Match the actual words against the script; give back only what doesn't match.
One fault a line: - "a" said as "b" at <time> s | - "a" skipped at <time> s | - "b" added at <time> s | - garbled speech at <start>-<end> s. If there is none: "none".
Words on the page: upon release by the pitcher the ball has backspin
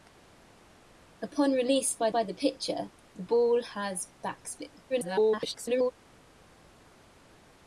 - "by" added at 2.1 s
- garbled speech at 4.9-5.9 s